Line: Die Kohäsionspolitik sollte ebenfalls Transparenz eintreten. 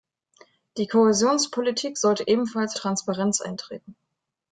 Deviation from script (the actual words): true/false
false